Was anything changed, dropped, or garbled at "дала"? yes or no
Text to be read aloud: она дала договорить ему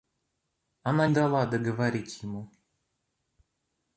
no